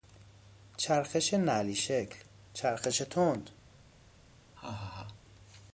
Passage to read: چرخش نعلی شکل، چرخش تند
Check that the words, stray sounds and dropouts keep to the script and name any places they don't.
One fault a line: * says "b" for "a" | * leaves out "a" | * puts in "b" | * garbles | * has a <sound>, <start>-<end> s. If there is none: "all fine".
* has a laugh, 4.6-5.2 s